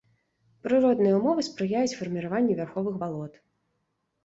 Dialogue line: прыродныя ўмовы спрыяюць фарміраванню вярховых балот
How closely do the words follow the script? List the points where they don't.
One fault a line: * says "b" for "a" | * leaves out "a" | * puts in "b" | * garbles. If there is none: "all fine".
all fine